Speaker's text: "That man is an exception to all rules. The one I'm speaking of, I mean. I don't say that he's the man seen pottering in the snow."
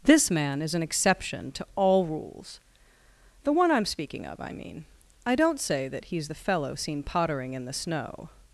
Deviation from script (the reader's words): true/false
true